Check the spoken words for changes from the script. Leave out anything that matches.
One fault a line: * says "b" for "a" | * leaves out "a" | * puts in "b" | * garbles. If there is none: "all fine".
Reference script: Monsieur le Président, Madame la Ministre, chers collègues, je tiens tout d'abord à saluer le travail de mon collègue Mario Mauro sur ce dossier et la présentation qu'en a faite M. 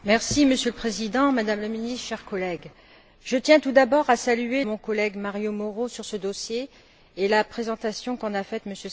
* leaves out "le travail de"